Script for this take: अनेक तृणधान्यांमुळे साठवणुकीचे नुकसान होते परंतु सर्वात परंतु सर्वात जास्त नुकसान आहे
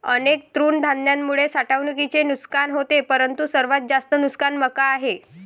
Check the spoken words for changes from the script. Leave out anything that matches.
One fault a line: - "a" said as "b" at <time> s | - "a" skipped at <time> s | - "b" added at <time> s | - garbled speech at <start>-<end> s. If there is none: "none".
- "परंतु सर्वात" skipped at 3.8 s
- "मका" added at 4.6 s